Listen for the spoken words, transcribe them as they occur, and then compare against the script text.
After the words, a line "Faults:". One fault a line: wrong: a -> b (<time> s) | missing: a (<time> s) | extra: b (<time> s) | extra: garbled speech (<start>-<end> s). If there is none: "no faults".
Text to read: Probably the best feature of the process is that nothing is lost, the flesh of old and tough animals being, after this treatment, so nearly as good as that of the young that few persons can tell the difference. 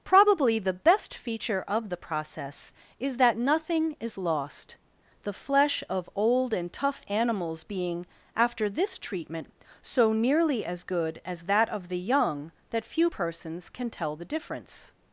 Probably the best feature of the process is that nothing is lost, the flesh of old and tough animals being, after this treatment, so nearly as good as that of the young that few persons can tell the difference.
Faults:
no faults